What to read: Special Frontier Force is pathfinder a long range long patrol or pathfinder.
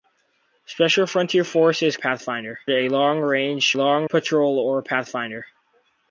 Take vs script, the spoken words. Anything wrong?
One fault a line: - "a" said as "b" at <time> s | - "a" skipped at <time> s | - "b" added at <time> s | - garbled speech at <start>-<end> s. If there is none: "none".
none